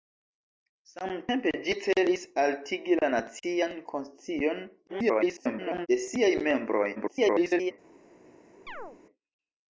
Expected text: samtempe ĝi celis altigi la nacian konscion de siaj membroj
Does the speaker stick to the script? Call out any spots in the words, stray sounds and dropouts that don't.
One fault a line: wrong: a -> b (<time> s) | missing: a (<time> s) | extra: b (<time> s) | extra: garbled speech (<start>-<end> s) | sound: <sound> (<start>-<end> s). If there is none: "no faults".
extra: garbled speech (4.9-5.9 s)
extra: garbled speech (6.9-7.7 s)
sound: chirp (8.7-9.0 s)